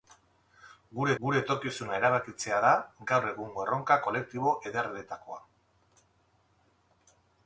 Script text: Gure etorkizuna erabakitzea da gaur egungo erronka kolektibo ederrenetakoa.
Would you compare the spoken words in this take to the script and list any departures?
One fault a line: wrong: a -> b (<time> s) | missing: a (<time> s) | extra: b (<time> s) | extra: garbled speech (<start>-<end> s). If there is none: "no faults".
extra: gure (1.2 s)